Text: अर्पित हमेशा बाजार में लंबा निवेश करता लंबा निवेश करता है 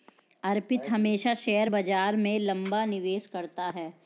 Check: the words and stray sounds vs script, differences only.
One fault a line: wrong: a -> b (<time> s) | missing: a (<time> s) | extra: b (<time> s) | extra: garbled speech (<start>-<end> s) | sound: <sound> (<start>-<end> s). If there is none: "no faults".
extra: शेयर (1.3 s)
missing: लंबा निवेश करता (3.7 s)